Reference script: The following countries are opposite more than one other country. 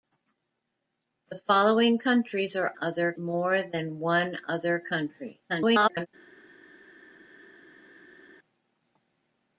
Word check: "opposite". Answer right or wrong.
wrong